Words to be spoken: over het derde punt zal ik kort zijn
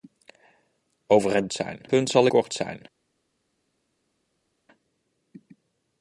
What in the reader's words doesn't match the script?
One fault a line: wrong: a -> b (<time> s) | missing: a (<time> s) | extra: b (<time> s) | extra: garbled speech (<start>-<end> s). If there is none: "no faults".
wrong: derde -> zijn (1.5 s)
missing: ik (2.3 s)